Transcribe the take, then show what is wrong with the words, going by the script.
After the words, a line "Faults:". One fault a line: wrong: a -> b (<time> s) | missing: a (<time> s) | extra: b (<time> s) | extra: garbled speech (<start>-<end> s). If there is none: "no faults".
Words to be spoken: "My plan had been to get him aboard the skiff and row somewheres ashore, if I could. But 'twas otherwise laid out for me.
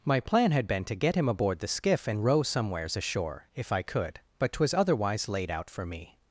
"My plan had been to get him aboard the skiff and row somewheres ashore, if I could. But 'twas otherwise laid out for me.
Faults:
no faults